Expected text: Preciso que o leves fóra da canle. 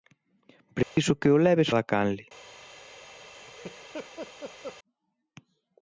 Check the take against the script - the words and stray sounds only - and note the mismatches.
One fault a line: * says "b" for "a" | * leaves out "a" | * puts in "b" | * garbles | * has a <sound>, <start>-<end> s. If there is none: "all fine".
* has a dropout, 0.8-1.0 s
* leaves out "fóra"
* has a laugh, 3.3-4.8 s